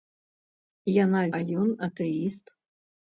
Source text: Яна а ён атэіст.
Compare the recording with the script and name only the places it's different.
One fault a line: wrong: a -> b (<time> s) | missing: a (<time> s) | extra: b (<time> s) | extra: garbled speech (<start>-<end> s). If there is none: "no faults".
no faults